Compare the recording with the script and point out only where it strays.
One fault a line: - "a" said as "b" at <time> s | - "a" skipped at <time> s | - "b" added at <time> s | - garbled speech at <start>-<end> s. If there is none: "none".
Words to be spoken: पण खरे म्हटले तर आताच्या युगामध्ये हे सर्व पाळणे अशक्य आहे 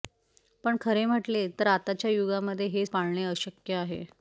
- "सर्व" skipped at 2.9 s